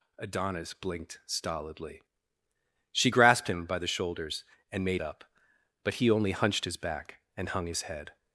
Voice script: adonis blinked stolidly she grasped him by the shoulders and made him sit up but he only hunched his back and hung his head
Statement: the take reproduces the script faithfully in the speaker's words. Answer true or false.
false